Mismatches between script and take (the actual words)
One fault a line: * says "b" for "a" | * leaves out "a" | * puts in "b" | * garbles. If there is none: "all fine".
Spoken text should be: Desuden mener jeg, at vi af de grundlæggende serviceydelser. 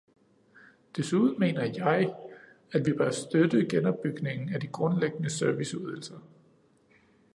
* puts in "bør støtte genopbygningen"